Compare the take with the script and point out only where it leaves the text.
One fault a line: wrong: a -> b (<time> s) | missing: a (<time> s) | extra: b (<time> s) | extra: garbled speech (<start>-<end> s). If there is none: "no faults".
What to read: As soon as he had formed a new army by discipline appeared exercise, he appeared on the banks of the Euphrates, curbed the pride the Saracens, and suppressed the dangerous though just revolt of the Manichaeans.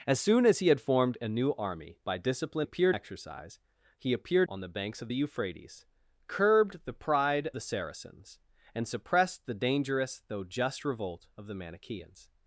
no faults